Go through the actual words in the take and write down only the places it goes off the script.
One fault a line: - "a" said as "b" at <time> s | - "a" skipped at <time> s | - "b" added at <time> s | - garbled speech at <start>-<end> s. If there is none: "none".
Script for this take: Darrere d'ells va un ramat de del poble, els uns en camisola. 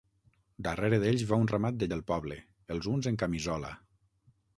none